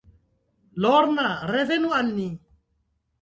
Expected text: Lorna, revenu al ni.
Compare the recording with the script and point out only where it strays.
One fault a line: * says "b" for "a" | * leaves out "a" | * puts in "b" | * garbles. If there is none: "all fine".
all fine